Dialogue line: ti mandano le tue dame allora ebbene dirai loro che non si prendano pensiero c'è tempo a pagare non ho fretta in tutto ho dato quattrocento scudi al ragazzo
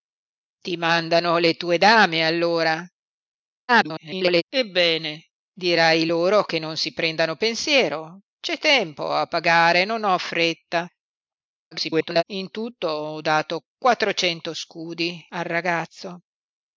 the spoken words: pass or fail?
fail